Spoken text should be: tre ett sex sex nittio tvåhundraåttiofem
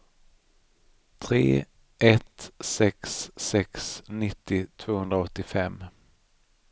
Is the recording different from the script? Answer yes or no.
no